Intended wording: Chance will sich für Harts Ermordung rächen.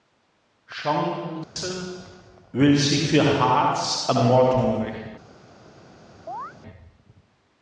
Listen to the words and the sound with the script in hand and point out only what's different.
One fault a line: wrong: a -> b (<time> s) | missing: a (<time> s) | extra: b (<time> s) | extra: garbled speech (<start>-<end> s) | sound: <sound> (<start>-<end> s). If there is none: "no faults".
sound: dropout (1.4-1.6 s)
sound: chirp (6.3-6.5 s)